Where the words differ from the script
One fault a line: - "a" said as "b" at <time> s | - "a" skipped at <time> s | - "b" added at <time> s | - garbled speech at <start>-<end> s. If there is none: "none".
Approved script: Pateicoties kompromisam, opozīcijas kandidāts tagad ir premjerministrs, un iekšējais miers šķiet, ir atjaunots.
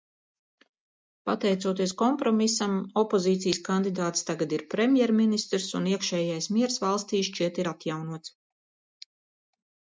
- "valstī" added at 6.9 s